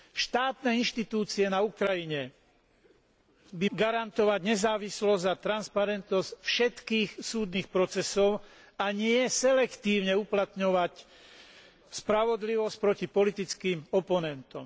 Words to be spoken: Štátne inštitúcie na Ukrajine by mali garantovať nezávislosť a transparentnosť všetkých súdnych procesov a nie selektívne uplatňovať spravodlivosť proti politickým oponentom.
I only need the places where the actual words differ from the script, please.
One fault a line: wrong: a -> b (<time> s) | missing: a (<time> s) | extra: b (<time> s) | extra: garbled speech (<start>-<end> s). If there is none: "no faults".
missing: mali (3.7 s)